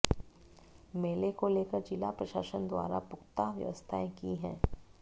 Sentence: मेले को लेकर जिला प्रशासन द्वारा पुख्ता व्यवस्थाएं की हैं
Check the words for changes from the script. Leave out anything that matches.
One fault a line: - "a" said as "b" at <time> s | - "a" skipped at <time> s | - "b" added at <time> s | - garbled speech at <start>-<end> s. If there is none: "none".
none